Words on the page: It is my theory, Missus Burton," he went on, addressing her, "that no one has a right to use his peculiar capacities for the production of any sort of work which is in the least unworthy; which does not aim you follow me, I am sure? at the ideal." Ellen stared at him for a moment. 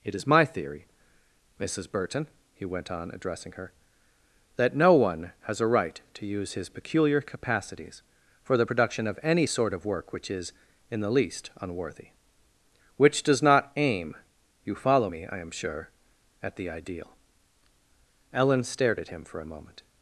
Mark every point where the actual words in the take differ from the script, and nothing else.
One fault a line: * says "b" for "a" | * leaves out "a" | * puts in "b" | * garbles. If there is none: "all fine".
all fine